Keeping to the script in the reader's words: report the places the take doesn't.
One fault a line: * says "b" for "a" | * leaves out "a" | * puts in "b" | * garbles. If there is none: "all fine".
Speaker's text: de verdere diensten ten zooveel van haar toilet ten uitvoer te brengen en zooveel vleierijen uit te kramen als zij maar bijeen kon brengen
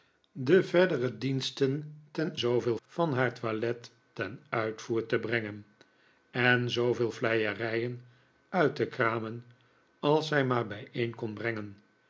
all fine